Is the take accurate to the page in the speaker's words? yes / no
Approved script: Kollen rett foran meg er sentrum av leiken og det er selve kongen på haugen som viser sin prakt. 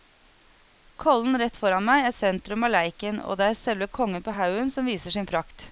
yes